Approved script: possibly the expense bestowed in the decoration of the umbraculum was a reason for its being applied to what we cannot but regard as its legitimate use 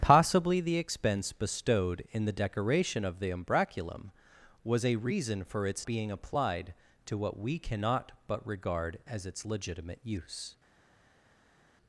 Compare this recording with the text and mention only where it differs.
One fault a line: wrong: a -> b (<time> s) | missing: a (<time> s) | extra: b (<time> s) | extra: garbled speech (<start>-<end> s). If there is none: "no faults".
no faults